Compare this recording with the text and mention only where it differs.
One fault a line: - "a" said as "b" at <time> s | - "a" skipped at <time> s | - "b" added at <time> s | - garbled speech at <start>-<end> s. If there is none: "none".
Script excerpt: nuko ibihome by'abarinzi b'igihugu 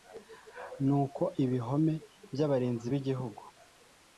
none